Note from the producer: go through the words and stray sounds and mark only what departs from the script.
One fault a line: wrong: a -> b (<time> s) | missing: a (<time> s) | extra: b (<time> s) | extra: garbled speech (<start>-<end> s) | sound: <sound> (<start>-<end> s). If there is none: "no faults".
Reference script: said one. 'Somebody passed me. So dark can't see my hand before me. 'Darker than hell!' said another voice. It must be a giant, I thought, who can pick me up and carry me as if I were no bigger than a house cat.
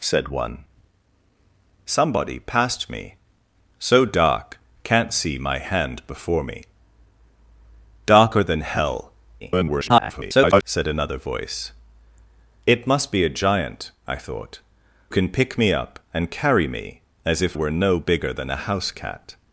extra: garbled speech (9.4-10.6 s)
missing: who (14.6 s)
missing: I (17.6 s)